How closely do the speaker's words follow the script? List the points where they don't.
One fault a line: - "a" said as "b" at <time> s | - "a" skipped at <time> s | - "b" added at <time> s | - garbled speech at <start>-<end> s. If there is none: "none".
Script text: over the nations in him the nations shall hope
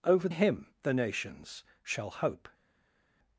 - "the nations in" skipped at 0.3 s